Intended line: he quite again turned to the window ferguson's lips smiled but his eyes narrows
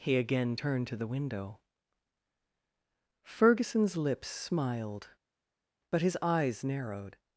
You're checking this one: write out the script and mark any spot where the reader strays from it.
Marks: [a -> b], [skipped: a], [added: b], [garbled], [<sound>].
he [skipped: quite] again turned to the window ferguson's lips smiled but his eyes [narrows -> narrowed]